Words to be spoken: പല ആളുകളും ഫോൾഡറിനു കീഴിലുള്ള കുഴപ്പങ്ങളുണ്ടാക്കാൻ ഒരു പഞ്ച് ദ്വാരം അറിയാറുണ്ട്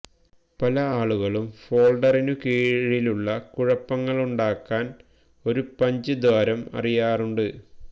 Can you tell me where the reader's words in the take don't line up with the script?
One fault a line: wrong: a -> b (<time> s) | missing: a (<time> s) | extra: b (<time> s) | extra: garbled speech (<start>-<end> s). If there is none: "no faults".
no faults